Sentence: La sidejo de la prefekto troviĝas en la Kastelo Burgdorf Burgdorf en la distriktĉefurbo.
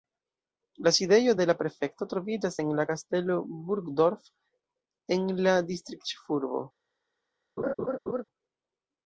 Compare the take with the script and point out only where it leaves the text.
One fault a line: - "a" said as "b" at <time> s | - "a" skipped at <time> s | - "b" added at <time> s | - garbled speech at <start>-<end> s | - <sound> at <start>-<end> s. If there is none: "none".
- "Burgdorf" skipped at 4.3 s
- laugh at 7.6-8.2 s